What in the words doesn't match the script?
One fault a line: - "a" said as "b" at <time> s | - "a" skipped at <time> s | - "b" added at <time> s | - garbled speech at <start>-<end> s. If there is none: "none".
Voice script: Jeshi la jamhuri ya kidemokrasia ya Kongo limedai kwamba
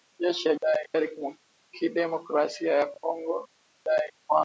- "jamhuri" said as "limedai" at 0.6 s